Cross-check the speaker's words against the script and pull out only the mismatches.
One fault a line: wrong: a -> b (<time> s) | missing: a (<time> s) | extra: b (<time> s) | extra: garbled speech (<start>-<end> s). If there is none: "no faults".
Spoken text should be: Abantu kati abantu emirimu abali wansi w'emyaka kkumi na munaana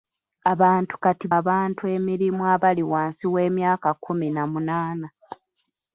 no faults